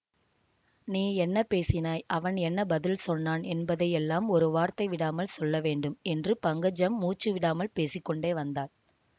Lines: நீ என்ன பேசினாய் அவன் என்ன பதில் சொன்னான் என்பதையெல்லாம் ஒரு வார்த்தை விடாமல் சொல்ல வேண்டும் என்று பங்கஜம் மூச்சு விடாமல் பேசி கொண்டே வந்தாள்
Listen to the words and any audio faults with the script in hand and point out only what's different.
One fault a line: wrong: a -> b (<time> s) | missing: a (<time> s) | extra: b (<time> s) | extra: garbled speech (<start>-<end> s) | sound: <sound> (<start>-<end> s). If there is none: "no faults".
no faults